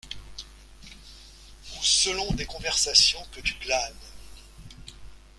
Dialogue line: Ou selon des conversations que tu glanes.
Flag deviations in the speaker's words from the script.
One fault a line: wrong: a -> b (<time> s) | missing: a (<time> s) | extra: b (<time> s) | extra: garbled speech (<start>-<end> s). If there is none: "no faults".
no faults